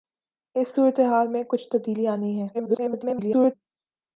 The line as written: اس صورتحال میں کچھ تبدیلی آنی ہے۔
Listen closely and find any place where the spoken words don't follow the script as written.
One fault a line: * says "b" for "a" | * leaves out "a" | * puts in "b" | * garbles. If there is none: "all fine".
* garbles